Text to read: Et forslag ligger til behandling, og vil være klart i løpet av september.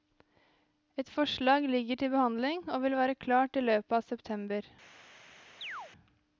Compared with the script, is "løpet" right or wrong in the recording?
right